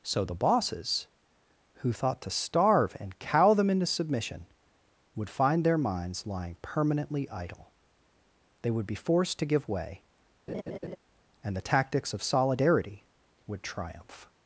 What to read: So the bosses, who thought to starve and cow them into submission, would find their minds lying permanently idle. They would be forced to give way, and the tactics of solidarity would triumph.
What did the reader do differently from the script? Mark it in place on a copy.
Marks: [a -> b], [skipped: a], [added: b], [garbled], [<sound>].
So the bosses, who thought to starve and cow them into submission, would find their minds lying permanently idle. They would be forced to give way, [laugh] and the tactics of solidarity would triumph.